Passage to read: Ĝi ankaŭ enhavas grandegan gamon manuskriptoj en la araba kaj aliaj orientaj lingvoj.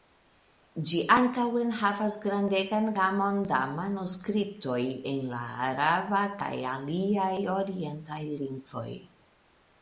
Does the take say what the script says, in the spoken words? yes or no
no